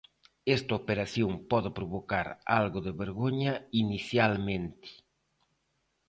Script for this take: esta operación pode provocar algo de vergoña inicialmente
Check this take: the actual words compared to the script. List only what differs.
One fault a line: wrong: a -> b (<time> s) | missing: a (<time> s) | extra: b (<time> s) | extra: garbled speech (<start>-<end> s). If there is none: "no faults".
no faults